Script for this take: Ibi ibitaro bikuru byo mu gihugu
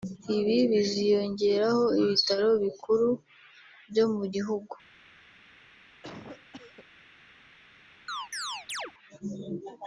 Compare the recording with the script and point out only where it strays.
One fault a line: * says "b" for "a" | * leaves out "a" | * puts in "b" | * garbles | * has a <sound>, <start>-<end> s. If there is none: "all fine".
* puts in "biziyongeraho"
* has a cough, 6.0-6.9 s
* has a chirp, 8.1-8.9 s